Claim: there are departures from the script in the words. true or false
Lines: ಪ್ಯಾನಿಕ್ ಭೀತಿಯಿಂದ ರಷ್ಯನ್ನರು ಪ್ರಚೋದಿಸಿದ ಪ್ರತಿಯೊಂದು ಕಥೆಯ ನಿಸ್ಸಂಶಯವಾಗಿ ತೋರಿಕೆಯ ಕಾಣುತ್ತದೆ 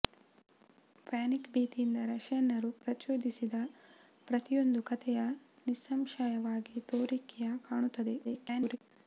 true